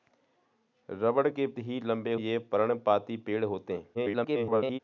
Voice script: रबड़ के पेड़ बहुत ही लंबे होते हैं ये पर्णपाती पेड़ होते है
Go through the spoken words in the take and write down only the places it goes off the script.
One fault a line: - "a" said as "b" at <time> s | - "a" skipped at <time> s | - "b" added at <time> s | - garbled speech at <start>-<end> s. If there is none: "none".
- "पेड़ बहुत" skipped at 1.5 s
- "होते हैं" skipped at 2.1 s
- garbled speech at 3.9-4.8 s